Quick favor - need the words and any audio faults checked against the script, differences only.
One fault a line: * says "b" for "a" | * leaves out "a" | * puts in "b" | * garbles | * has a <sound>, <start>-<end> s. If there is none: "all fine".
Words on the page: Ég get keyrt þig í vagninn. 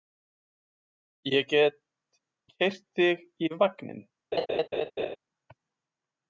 * has a laugh, 4.3-5.2 s